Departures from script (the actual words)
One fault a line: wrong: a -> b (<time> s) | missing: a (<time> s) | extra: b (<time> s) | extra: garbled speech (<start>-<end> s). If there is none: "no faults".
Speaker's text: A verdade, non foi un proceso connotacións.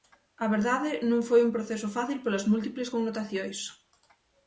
extra: fácil polas múltiples (2.0 s)